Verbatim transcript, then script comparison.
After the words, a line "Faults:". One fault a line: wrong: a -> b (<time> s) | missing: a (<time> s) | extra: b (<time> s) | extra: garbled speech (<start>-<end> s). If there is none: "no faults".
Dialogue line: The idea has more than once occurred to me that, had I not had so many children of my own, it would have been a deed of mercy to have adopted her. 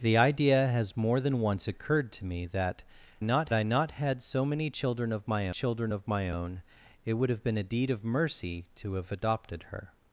The idea has more than once occurred to me that, not I not had so many children of my children of my own, it would have been a deed of mercy to have adopted her.
Faults:
wrong: had -> not (3.2 s)
extra: children of my (5.5 s)